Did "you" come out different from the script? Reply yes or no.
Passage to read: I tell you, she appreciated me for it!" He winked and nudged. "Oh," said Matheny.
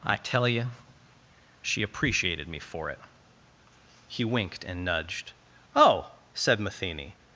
no